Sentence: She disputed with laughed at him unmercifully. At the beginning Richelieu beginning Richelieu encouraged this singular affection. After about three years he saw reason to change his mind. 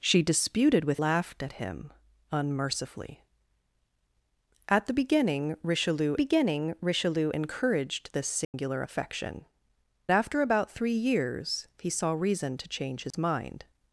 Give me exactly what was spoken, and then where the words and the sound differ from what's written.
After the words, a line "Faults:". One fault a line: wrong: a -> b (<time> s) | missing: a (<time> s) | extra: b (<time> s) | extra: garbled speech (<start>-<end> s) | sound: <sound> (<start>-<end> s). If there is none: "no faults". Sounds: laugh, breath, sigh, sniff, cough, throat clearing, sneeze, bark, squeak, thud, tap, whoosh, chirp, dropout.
She disputed with laughed at him unmercifully. At the beginning Richelieu beginning Richelieu encouraged this singular affection. After about three years he saw reason to change his mind.
Faults:
sound: dropout (8.4-8.5 s)
sound: dropout (13.1-13.1 s)